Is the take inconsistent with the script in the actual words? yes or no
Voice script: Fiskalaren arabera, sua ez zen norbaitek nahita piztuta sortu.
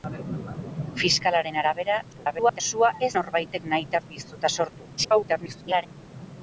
yes